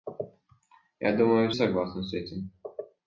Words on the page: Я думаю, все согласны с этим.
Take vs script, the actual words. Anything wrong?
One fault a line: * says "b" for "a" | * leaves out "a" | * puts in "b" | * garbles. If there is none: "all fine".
* leaves out "все"